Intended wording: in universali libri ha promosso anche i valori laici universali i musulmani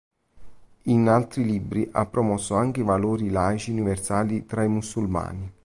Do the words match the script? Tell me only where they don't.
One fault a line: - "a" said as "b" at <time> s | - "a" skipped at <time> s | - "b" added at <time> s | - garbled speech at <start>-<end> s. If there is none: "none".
- "universali" said as "altri" at 1.1 s
- "tra" added at 4.5 s